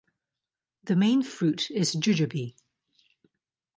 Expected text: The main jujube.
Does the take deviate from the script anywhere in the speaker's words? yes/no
yes